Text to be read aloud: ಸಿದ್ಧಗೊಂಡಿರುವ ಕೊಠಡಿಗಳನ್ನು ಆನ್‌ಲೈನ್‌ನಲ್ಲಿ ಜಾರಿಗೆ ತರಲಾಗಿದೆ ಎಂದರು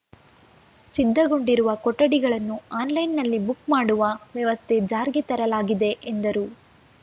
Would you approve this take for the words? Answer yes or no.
no